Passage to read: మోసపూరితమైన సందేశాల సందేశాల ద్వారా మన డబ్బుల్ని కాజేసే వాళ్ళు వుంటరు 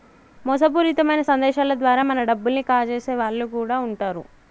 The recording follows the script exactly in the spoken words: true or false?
false